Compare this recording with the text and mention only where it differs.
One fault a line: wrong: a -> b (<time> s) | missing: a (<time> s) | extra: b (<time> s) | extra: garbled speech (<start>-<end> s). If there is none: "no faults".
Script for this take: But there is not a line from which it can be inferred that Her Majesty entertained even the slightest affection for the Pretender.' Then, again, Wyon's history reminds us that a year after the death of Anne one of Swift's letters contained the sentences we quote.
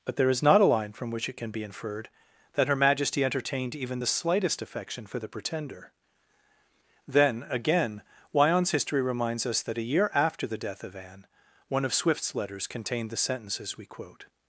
no faults